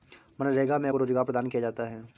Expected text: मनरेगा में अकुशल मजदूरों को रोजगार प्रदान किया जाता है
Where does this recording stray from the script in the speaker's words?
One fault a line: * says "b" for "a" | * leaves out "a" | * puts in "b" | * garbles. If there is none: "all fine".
* leaves out "अकुशल मजदूरों"